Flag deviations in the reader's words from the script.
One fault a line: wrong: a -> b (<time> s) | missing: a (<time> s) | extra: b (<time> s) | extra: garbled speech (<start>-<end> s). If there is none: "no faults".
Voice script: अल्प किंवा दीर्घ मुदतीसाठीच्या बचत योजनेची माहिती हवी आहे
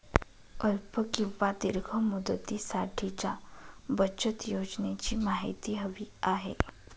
no faults